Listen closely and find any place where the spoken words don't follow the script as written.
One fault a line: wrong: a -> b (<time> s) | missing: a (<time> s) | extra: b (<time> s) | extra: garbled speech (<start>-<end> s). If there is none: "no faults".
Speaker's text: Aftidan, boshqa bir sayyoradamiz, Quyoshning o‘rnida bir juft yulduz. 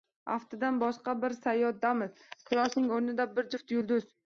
no faults